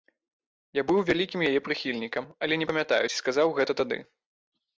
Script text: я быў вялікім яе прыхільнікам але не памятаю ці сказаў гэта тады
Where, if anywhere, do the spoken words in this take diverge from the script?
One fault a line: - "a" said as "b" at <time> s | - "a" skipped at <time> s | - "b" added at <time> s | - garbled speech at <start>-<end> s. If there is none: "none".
none